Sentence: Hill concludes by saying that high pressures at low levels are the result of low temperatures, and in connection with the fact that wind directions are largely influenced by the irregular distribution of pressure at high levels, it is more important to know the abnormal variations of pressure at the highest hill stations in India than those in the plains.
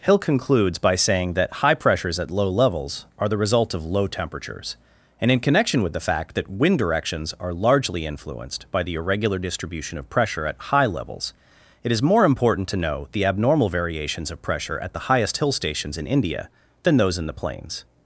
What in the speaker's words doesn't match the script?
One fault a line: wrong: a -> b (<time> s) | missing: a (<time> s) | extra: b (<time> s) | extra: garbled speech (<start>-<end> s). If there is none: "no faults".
no faults